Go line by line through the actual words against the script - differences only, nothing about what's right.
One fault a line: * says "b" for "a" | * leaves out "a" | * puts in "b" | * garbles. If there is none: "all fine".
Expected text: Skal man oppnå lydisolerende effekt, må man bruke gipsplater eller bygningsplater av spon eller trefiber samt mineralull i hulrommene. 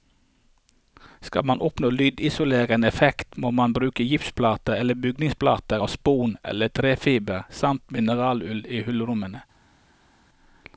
all fine